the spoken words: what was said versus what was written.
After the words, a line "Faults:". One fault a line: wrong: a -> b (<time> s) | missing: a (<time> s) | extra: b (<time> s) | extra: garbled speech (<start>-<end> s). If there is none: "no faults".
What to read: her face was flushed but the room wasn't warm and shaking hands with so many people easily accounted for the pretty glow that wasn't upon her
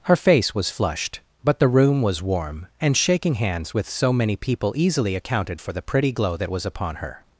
her face was flushed but the room was warm and shaking hands with so many people easily accounted for the pretty glow that was upon her
Faults:
wrong: wasn't -> was (2.0 s)
wrong: wasn't -> was (6.5 s)